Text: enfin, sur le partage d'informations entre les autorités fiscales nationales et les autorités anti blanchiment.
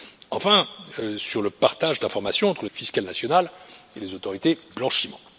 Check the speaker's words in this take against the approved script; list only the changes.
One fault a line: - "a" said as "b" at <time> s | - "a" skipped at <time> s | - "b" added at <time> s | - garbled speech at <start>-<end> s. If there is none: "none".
- "les autorités" skipped at 2.6 s
- "anti" skipped at 4.6 s